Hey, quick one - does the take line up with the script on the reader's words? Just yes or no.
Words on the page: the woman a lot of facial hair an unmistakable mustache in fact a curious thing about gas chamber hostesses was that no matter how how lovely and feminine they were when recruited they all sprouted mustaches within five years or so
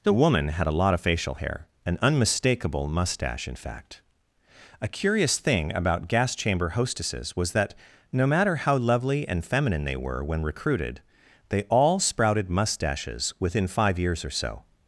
no